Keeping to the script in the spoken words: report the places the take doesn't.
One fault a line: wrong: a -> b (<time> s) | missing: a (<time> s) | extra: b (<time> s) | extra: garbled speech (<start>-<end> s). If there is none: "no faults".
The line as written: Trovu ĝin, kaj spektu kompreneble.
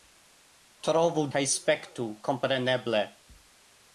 missing: ĝin (1.2 s)